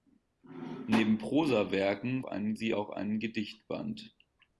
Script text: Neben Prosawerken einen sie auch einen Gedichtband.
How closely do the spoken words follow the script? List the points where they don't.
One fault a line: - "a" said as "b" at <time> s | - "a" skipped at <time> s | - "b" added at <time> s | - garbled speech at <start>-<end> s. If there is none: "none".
none